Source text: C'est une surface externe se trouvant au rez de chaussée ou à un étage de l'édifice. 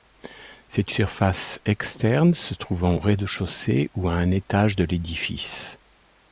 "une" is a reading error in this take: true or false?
true